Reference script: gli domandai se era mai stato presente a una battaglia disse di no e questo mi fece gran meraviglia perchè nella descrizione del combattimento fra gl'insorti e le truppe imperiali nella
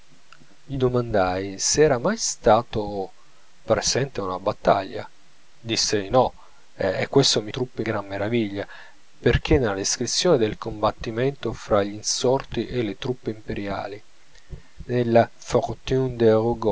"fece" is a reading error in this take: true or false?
true